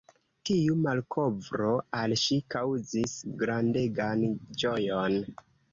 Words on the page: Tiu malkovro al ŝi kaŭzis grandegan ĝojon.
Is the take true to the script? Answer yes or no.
yes